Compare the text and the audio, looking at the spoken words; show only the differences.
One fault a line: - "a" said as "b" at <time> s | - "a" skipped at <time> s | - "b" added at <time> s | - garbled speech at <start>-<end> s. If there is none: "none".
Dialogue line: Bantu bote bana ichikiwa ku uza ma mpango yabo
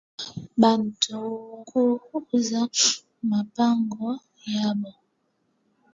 - "bote bana ichikiwa" skipped at 1.2 s